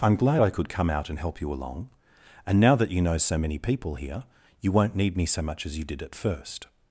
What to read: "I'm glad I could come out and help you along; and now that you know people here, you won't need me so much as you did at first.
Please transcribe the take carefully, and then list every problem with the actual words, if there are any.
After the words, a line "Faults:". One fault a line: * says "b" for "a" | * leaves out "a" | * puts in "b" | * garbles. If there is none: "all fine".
"I'm glad I could come out and help you along; and now that you know so many people here, you won't need me so much as you did at first.
Faults:
* puts in "so many"